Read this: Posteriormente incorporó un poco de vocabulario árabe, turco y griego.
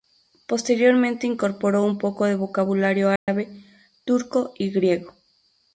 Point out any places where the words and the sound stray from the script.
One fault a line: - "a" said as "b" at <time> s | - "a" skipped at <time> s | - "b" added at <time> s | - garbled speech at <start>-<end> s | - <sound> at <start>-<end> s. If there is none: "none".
- dropout at 3.2-3.3 s